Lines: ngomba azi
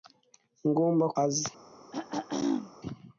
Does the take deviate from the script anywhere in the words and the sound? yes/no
yes